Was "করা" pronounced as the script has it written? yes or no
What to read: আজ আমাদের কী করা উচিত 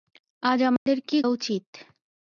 no